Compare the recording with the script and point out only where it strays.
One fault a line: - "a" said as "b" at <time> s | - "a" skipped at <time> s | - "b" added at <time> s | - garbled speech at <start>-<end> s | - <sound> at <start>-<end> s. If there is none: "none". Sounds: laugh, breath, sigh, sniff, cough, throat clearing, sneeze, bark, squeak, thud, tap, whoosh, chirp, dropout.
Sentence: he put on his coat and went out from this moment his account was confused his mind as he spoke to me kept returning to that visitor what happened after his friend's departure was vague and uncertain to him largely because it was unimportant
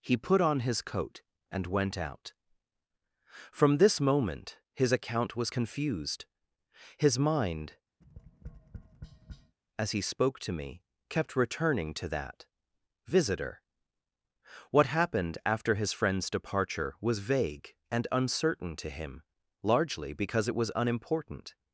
- tap at 8.0-9.6 s